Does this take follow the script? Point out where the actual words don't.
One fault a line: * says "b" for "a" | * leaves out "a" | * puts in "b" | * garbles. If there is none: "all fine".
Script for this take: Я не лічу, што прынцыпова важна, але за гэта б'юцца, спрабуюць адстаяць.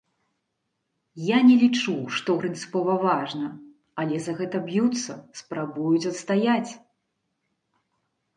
all fine